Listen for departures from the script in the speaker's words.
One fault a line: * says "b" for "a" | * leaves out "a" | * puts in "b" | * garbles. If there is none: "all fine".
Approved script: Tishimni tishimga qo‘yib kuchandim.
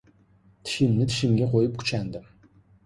all fine